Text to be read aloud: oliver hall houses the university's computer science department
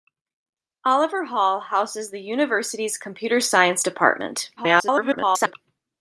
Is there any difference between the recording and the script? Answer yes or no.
yes